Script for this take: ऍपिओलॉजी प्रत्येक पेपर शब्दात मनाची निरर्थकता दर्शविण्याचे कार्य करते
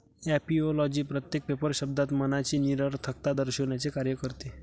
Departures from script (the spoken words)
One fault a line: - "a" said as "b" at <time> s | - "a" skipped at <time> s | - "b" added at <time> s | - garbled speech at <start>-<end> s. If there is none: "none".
none